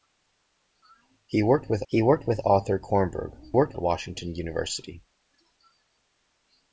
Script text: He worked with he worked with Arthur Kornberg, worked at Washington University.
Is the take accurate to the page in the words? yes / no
yes